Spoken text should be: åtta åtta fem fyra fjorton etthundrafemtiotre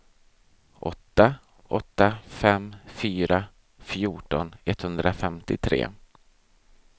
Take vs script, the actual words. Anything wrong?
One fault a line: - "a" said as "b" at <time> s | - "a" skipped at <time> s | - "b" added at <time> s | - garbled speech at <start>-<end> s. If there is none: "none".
none